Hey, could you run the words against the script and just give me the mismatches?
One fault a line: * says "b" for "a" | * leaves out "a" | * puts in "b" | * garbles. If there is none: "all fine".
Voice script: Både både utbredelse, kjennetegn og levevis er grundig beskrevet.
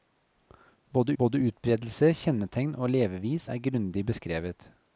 all fine